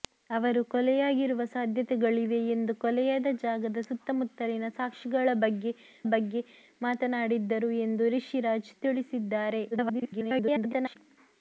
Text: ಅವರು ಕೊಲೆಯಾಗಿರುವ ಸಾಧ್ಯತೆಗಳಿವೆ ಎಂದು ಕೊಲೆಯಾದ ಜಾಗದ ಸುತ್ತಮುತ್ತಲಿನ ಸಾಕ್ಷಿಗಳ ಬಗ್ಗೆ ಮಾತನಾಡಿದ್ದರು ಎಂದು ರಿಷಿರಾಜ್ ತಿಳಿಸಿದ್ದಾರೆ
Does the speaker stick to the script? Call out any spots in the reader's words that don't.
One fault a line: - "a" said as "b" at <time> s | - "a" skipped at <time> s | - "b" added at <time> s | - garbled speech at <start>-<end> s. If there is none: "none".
- "ಬಗ್ಗೆ" added at 6.1 s
- garbled speech at 9.7-11.0 s